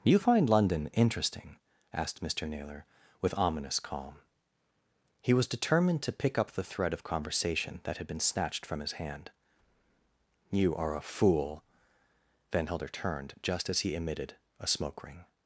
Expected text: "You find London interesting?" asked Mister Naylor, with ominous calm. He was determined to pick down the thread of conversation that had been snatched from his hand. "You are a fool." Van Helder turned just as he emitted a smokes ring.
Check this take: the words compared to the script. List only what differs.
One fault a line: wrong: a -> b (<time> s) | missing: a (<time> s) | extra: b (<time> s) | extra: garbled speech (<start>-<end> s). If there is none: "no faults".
wrong: down -> up (6.4 s)
wrong: smokes -> smoke (14.7 s)